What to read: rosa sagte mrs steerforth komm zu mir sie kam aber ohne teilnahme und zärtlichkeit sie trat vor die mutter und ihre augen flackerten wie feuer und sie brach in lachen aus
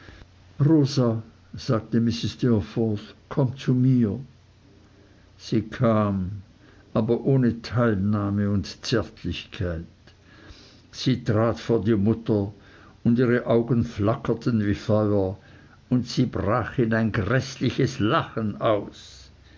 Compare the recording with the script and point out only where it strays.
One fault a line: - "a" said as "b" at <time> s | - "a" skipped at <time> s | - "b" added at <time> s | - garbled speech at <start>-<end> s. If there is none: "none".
- "ein gräßliches" added at 16.9 s